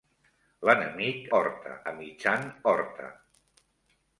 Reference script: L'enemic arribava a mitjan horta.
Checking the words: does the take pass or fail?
fail